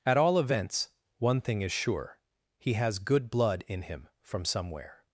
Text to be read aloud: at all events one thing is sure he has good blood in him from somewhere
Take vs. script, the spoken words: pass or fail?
pass